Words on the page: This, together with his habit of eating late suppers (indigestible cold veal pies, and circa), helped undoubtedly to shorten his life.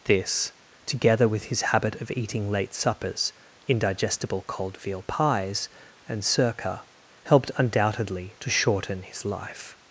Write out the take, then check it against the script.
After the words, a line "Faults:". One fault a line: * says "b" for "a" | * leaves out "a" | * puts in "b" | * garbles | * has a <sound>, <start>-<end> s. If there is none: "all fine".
This, together with his habit of eating late suppers (indigestible cold veal pies, and circa), helped undoubtedly to shorten his life.
Faults:
all fine